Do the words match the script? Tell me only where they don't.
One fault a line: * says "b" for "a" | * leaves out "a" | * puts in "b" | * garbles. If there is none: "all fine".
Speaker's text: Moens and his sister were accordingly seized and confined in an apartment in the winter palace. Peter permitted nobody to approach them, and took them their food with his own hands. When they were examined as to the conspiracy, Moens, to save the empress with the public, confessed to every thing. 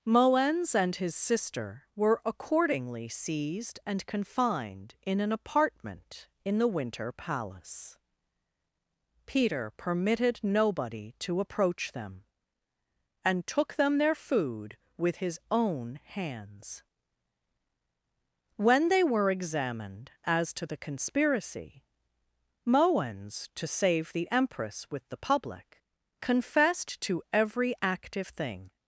* puts in "active"